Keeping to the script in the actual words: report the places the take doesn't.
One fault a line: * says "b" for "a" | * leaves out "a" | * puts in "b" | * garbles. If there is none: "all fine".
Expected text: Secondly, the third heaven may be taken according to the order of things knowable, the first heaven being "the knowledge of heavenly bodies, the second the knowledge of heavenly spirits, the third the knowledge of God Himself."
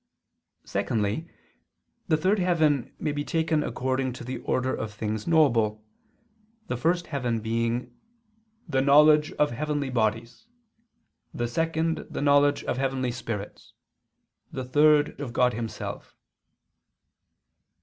* leaves out "the knowledge"